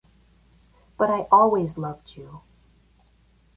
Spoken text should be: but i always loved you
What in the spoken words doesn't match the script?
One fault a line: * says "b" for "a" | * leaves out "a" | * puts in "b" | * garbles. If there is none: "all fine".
all fine